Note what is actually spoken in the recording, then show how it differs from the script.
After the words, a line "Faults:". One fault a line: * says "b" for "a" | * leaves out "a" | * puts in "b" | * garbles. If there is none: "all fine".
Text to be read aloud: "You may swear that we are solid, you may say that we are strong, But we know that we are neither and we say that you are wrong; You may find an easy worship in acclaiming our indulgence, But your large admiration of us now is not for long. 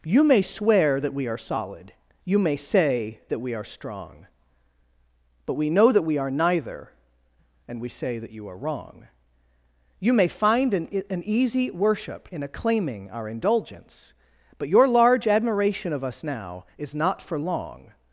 "You may swear that we are solid, you may say that we are strong, But we know that we are neither and we say that you are wrong; You may find an an easy worship in acclaiming our indulgence, But your large admiration of us now is not for long.
Faults:
* puts in "an"